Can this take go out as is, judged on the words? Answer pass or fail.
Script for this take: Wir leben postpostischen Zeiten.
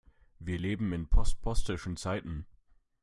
fail